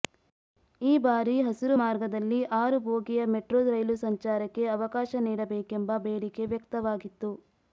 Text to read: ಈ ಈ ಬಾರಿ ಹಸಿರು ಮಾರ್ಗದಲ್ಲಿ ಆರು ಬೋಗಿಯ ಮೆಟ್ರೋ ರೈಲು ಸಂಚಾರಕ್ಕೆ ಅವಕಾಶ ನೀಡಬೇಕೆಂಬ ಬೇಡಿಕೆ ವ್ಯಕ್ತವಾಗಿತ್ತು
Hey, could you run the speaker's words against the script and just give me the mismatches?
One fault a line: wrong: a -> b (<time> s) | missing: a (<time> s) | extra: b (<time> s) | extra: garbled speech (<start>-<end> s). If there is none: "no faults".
missing: ಈ (1.0 s)